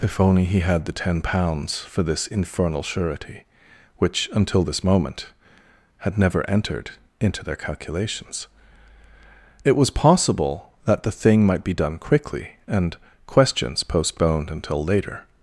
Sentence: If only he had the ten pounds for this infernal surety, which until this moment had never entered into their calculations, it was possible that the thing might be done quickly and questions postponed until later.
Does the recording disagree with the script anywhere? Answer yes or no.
no